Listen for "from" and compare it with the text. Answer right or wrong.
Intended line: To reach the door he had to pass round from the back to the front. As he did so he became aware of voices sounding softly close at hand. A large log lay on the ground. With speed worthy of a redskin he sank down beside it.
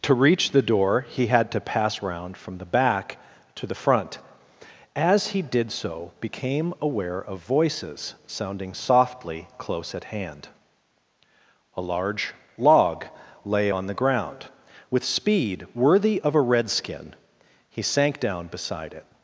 right